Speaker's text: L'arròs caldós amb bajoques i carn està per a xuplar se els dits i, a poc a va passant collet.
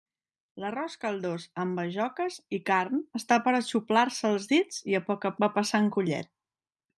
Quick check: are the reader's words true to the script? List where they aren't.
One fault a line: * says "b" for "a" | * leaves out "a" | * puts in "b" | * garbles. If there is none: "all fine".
all fine